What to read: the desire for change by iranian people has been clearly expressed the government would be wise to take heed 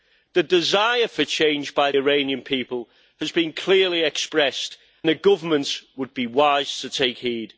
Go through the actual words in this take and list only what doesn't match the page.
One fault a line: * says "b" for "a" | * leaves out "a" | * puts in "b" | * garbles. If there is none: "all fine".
all fine